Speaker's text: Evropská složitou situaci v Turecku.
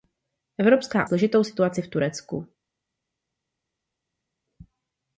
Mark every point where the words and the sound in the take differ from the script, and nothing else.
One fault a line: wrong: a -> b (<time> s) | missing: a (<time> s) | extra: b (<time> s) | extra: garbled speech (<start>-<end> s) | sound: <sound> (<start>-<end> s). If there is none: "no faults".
no faults